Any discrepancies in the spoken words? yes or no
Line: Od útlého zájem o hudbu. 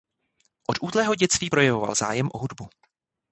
yes